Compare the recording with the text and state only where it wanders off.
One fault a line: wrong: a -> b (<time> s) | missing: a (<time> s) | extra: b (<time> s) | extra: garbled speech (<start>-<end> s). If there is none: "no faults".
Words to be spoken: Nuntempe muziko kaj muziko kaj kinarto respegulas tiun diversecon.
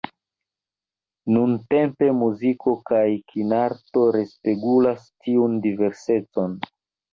missing: muziko kaj (3.0 s)